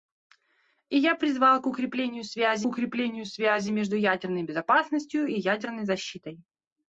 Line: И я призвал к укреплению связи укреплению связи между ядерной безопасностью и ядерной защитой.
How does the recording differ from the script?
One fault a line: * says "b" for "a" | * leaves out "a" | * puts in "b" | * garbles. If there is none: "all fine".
all fine